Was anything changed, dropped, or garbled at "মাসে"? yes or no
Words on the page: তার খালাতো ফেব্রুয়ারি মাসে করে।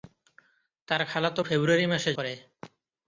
no